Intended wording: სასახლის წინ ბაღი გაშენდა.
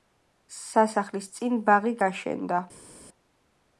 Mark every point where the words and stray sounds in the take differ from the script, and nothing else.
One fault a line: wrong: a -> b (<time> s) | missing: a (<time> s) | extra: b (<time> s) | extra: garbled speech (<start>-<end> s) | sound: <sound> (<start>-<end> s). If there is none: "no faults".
no faults